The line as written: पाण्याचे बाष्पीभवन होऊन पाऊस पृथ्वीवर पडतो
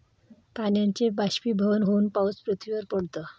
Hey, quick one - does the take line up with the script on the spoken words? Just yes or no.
yes